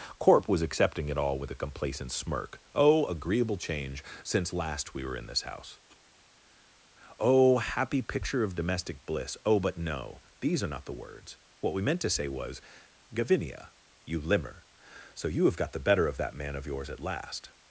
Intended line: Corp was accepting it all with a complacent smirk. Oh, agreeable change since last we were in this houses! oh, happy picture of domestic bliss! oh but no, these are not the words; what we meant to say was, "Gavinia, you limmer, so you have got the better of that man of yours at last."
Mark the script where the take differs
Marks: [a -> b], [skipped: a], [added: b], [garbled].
Corp was accepting it all with a complacent smirk. Oh, agreeable change since last we were in this [houses! -> house] oh, happy picture of domestic bliss! oh but no, these are not the words; what we meant to say was, "Gavinia, you limmer, so you have got the better of that man of yours at last."